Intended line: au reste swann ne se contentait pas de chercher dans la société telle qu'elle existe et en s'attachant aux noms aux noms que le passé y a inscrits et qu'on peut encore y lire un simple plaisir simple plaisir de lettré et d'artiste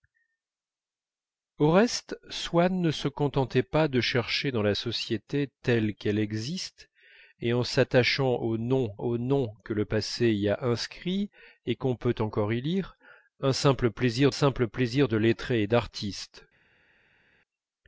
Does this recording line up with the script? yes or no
yes